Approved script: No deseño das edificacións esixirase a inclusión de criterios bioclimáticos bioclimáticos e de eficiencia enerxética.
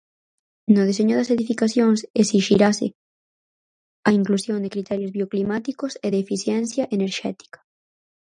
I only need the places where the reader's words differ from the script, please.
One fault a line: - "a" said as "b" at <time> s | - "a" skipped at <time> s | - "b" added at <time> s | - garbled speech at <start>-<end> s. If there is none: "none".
- "bioclimáticos" skipped at 5.9 s